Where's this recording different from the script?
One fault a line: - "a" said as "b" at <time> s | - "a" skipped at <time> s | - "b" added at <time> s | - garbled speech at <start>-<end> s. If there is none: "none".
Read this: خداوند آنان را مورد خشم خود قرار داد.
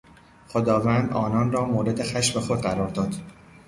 none